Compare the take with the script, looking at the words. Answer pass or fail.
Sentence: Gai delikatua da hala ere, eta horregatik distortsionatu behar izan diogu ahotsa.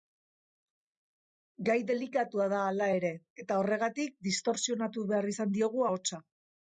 pass